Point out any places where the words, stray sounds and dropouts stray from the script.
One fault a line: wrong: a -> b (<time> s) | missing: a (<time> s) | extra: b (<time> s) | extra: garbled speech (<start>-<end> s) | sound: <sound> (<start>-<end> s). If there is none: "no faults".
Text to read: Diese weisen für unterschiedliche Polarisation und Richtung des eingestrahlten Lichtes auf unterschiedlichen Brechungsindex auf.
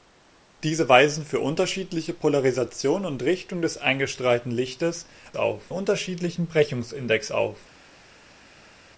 no faults